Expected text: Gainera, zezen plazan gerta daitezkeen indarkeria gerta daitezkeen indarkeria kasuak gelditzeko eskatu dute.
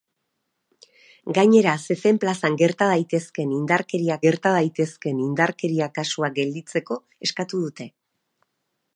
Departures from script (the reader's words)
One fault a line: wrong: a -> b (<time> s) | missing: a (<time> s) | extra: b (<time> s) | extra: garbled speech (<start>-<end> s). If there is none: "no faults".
no faults